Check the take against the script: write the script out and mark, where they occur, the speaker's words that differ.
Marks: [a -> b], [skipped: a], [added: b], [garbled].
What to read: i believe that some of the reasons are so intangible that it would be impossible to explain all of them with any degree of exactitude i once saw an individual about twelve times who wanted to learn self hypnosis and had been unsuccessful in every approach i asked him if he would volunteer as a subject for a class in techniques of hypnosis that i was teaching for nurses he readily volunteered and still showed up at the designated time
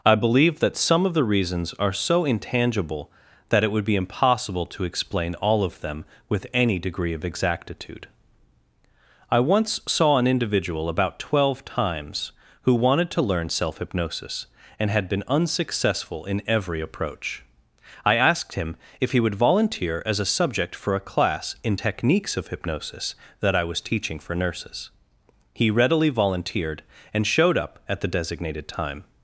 i believe that some of the reasons are so intangible that it would be impossible to explain all of them with any degree of exactitude i once saw an individual about twelve times who wanted to learn self hypnosis and had been unsuccessful in every approach i asked him if he would volunteer as a subject for a class in techniques of hypnosis that i was teaching for nurses he readily volunteered and [skipped: still] showed up at the designated time